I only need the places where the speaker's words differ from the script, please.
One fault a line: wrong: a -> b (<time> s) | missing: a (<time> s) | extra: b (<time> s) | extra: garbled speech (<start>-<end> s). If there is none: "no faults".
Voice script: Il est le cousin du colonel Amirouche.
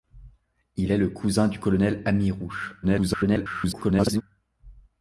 extra: garbled speech (2.8-4.2 s)